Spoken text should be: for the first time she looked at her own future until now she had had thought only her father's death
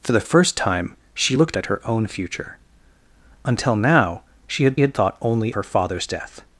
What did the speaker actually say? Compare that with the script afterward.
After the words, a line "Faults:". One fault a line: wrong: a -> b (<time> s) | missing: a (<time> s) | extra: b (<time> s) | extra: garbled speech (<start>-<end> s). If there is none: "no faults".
for the first time she looked at her own future until now she had had thought only her father's death
Faults:
no faults